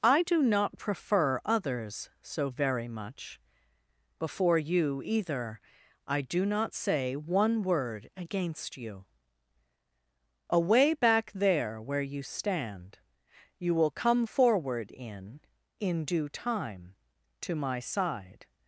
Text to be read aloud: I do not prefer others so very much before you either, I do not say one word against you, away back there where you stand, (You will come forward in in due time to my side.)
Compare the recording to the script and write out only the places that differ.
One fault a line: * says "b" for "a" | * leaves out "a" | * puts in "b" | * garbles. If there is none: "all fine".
all fine